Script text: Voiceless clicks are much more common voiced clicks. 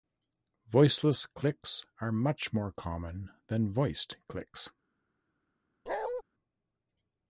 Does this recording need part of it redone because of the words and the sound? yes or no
yes